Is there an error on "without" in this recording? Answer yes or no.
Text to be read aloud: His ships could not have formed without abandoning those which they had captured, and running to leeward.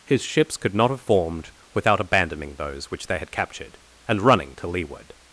no